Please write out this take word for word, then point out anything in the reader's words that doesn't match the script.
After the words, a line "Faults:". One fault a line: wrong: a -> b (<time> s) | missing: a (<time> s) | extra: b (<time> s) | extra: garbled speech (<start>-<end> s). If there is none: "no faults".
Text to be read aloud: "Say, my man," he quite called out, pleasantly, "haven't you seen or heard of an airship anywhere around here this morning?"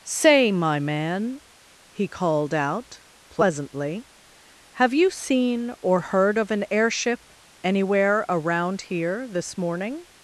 "Say, my man," he called out, pleasantly, "have you seen or heard of an airship anywhere around here this morning?"
Faults:
missing: quite (2.1 s)
wrong: haven't -> have (4.7 s)